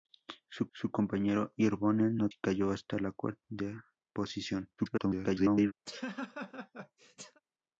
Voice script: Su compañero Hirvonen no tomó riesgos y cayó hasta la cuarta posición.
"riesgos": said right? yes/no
no